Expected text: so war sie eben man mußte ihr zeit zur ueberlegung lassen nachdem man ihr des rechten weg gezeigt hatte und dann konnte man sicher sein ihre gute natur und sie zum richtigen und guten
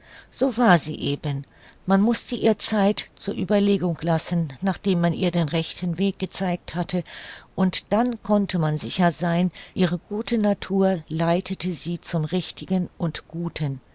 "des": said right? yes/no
no